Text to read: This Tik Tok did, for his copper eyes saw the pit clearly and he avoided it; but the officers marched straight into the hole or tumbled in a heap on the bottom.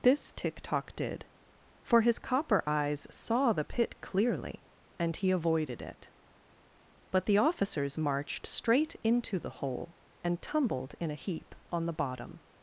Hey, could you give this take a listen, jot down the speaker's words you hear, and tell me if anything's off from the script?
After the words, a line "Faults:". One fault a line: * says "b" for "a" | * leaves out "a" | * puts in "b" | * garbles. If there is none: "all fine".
This Tik Tok did, for his copper eyes saw the pit clearly and he avoided it; but the officers marched straight into the hole and tumbled in a heap on the bottom.
Faults:
* says "and" for "or"